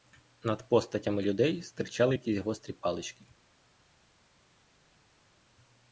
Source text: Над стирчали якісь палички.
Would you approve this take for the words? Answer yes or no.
no